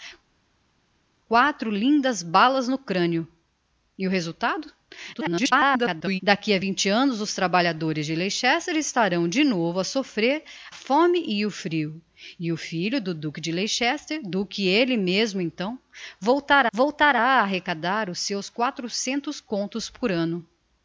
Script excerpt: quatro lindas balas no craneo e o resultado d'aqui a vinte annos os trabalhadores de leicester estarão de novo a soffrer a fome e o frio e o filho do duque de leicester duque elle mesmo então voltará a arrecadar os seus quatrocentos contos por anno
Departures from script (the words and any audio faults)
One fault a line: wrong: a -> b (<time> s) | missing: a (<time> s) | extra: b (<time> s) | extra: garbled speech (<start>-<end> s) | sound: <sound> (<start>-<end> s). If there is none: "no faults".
extra: garbled speech (5.1-6.2 s)
missing: a (10.4 s)
extra: voltará (16.7 s)